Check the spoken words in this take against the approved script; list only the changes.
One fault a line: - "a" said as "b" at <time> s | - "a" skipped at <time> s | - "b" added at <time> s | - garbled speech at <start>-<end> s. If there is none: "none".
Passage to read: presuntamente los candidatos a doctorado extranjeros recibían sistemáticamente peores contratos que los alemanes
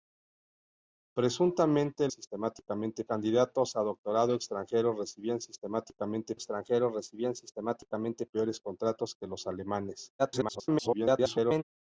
- "los" said as "sistemáticamente" at 2.1 s
- "extranjeros recibían sistemáticamente" added at 6.3 s
- garbled speech at 10.2-11.6 s